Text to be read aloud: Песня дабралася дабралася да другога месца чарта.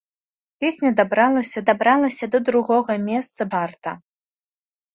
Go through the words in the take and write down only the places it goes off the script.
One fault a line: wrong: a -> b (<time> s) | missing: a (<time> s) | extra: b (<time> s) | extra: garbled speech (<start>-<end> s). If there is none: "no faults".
no faults